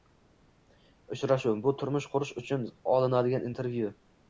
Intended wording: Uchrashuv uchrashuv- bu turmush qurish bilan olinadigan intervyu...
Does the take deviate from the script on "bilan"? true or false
true